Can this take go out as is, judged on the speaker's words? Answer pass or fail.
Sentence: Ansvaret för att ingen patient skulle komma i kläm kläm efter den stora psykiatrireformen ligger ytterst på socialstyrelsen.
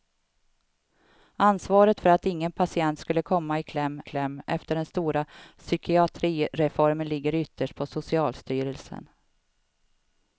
pass